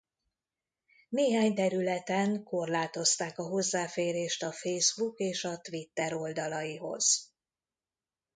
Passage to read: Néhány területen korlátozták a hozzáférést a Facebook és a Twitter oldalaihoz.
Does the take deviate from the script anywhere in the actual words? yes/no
no